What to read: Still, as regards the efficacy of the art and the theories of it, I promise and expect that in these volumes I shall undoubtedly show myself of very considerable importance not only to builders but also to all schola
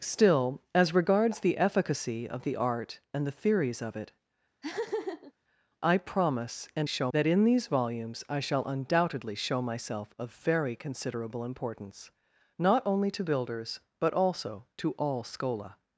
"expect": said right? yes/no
no